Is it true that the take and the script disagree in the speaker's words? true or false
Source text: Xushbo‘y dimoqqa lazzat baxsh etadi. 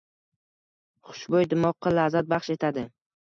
false